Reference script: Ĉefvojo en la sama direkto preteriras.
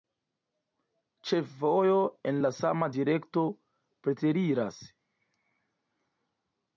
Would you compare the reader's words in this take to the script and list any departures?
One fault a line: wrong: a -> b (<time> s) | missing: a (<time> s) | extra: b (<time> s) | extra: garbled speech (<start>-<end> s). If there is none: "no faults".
no faults